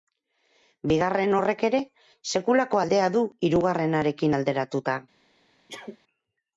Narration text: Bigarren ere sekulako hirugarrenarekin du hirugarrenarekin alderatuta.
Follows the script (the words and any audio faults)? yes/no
no